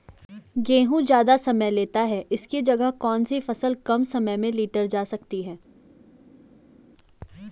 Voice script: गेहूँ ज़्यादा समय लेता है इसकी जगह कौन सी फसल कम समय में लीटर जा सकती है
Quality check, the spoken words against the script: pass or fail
pass